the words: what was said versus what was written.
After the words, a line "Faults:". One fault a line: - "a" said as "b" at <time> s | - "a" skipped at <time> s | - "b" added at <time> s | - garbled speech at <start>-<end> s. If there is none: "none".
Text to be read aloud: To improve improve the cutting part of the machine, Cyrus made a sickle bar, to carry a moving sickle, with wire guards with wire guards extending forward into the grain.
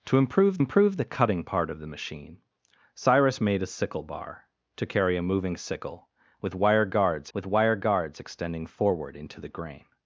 To improve improve the cutting part of the machine, Cyrus made a sickle bar, to carry a moving sickle, with wire guards with wire guards extending forward into the grain.
Faults:
none